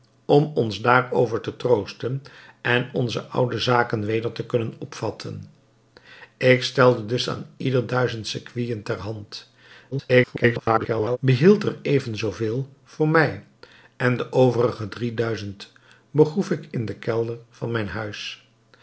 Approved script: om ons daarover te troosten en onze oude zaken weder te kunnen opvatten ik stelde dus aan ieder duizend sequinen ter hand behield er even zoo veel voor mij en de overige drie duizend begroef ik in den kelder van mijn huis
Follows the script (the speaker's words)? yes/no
no